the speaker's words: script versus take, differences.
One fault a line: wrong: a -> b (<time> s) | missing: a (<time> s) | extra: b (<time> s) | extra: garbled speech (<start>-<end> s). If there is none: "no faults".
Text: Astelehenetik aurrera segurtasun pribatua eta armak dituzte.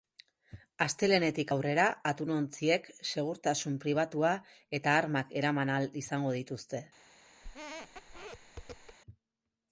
extra: atunontziek (2.1 s)
extra: eraman ahal izango (5.4 s)